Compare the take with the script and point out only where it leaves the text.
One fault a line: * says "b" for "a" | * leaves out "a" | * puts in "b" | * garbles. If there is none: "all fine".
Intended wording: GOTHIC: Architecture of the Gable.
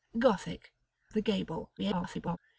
* leaves out "Architecture of"
* garbles